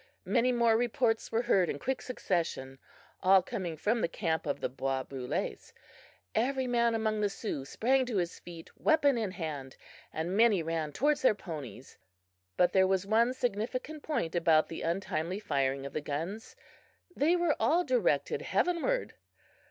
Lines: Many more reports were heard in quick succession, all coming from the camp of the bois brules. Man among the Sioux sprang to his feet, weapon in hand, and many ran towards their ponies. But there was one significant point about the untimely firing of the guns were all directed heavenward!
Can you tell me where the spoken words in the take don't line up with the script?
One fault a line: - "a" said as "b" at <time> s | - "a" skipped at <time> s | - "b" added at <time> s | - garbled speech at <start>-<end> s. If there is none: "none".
- "Every" added at 6.3 s
- "they" added at 17.1 s